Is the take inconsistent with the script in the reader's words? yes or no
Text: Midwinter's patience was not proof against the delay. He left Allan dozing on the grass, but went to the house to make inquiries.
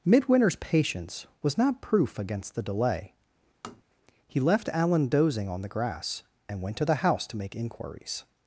yes